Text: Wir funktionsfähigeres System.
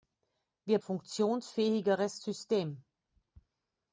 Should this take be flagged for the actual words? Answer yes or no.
no